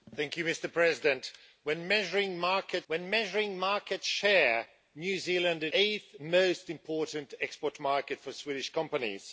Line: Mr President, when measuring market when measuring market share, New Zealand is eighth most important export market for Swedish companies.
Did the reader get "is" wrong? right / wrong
right